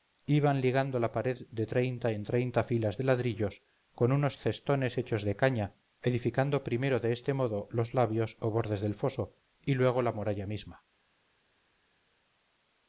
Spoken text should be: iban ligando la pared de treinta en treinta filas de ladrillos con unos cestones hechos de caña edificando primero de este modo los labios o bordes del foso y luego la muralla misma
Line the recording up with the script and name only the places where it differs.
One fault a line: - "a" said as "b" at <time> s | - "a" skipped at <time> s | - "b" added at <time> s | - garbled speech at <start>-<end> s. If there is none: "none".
none